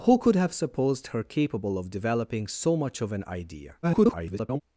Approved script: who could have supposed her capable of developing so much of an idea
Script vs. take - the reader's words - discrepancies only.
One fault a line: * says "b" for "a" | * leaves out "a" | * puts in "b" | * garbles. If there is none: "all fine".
* garbles